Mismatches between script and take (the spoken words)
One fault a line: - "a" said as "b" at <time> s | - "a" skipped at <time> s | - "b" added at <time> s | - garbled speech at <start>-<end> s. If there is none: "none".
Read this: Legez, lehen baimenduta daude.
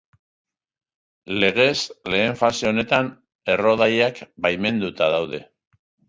- "fase honetan errodaiak" added at 2.4 s